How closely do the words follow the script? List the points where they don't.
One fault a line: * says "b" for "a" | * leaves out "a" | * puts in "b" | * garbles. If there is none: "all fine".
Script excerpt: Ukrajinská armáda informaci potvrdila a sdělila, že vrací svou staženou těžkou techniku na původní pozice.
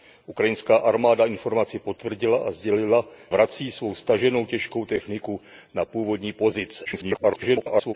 * leaves out "že"
* garbles